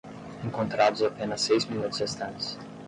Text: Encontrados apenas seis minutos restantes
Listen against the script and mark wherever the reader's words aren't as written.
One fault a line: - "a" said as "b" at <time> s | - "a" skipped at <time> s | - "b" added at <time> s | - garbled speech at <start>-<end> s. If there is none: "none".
none